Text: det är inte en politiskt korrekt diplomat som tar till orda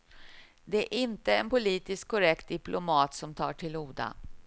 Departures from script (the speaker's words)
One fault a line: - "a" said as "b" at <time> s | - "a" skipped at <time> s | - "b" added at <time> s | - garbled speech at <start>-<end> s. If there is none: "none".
none